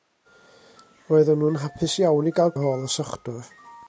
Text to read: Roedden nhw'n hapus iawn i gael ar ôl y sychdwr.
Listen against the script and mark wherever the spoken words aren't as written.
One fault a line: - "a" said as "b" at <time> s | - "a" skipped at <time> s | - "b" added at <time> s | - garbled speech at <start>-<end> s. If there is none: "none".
none